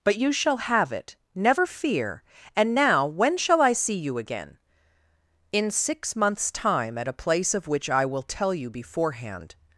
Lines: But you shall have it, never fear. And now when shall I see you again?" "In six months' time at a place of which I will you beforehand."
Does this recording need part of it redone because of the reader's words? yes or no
yes